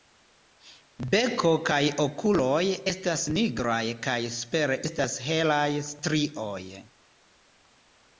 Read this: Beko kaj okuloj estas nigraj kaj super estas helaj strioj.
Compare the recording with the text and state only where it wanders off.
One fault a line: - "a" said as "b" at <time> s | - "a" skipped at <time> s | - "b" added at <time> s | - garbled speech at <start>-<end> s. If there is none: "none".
none